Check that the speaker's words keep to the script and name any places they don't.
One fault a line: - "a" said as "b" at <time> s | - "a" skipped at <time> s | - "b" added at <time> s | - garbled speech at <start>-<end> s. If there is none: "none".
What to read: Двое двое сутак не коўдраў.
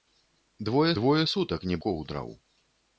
none